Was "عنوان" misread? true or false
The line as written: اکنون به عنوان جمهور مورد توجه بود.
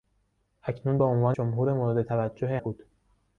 false